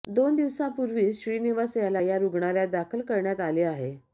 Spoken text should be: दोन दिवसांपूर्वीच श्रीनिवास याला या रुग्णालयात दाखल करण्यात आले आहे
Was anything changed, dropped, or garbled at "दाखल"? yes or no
no